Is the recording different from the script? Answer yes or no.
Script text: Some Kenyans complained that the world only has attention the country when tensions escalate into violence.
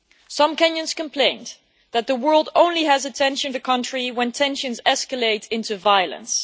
no